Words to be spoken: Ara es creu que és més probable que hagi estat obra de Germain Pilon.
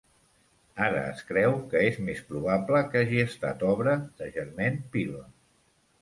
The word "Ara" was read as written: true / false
true